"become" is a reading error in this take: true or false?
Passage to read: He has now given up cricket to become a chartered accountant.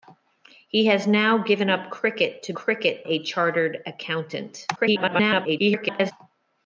true